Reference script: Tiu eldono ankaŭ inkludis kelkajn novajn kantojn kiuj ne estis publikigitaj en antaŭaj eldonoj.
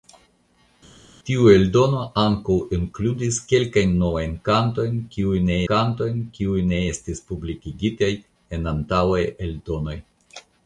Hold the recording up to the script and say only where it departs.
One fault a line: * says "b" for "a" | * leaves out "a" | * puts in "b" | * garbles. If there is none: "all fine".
* puts in "kantojn kiuj ne"